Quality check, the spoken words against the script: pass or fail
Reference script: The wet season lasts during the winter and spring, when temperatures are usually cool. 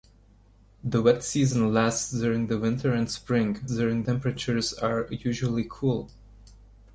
fail